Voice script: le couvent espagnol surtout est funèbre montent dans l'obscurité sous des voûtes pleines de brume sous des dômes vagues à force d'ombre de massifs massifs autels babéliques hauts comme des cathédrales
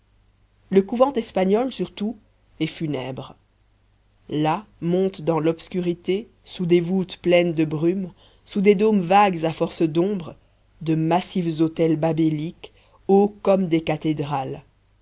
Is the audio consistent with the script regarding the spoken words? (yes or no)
no